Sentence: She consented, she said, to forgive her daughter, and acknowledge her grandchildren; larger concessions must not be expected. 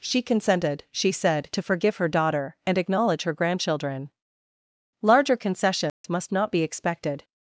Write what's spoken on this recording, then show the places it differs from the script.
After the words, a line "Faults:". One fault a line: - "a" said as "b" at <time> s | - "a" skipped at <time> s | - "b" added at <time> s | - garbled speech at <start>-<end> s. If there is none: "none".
She consented, she said, to forgive her daughter, and acknowledge her grandchildren; larger concessions must not be expected.
Faults:
none